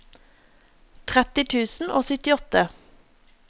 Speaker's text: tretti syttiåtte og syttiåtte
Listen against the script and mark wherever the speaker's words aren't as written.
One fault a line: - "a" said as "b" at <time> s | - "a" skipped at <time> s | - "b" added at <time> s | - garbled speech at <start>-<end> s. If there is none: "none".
- "syttiåtte" said as "tusen" at 1.6 s